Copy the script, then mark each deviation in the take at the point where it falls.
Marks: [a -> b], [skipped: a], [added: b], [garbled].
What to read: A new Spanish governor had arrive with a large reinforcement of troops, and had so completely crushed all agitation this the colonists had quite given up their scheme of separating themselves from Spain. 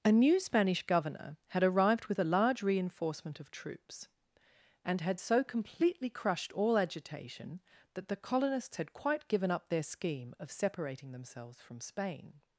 A new Spanish governor had [arrive -> arrived] with a large reinforcement of troops, and had so completely crushed all agitation [this -> that] the colonists had quite given up their scheme of separating themselves from Spain.